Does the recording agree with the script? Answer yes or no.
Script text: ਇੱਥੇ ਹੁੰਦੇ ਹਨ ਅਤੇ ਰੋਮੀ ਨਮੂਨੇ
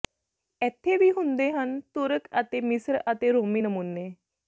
no